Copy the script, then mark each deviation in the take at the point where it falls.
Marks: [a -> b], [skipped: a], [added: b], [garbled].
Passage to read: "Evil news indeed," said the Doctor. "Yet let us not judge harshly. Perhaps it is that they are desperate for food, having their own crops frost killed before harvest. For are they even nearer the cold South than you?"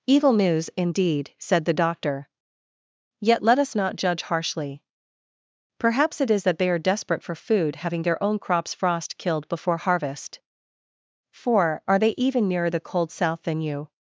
"Evil news indeed," said the Doctor. "Yet let us not judge harshly. Perhaps it is that they are desperate for food, having their own crops frost killed before harvest. For are they even nearer the cold South than you?"